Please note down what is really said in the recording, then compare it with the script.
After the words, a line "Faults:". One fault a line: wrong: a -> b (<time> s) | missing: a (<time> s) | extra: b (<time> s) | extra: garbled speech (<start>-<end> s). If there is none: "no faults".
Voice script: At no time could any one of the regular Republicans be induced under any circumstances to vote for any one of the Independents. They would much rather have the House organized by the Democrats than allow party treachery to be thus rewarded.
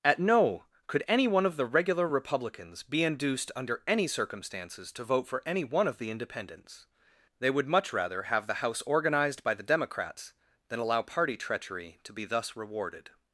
At no could any one of the regular Republicans be induced under any circumstances to vote for any one of the Independents. They would much rather have the House organized by the Democrats than allow party treachery to be thus rewarded.
Faults:
missing: time (0.7 s)